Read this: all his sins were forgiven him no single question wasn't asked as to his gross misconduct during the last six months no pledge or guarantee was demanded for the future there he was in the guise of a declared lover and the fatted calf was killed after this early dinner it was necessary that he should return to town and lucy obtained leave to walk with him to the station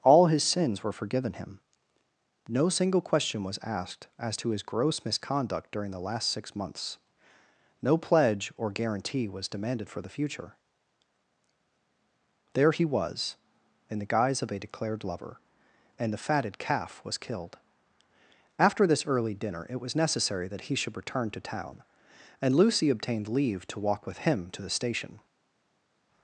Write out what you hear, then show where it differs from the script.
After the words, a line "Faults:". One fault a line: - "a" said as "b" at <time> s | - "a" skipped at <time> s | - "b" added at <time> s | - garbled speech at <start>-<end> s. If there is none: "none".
all his sins were forgiven him no single question was asked as to his gross misconduct during the last six months no pledge or guarantee was demanded for the future there he was in the guise of a declared lover and the fatted calf was killed after this early dinner it was necessary that he should return to town and lucy obtained leave to walk with him to the station
Faults:
- "wasn't" said as "was" at 3.4 s